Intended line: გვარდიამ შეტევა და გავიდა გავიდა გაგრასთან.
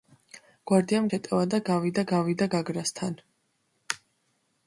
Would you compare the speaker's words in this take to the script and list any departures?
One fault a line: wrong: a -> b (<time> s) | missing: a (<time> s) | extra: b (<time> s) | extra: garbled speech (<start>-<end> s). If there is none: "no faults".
no faults